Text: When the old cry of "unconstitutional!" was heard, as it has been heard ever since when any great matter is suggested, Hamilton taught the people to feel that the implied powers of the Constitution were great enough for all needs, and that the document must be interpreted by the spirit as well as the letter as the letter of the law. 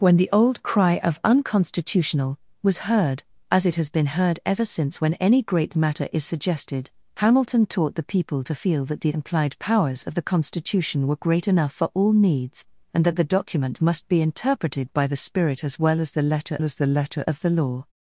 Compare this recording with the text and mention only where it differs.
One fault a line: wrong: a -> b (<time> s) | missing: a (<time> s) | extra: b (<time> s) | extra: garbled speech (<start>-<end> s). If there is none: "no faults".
no faults